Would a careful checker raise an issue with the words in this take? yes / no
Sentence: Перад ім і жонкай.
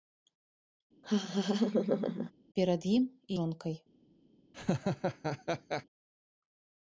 no